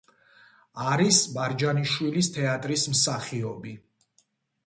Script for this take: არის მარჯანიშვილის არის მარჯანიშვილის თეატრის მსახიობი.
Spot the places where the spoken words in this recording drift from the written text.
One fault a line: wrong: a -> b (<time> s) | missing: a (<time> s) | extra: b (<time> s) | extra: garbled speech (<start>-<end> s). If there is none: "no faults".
missing: არის მარჯანიშვილის (2.3 s)